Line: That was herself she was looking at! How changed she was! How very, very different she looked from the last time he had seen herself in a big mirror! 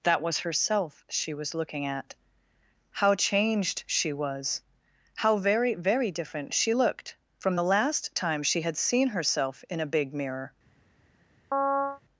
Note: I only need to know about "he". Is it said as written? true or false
false